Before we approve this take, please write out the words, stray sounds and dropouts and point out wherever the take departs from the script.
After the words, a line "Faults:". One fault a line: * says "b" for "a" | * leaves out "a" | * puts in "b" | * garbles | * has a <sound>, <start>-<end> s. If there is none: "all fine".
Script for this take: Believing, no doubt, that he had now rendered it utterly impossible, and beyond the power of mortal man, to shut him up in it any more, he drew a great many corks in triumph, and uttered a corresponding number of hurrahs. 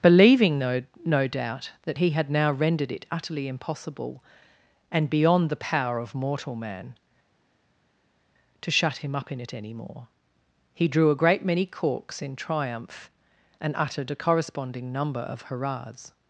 Believing, no no doubt, that he had now rendered it utterly impossible, and beyond the power of mortal man, to shut him up in it any more, he drew a great many corks in triumph, and uttered a corresponding number of hurrahs.
Faults:
* puts in "no"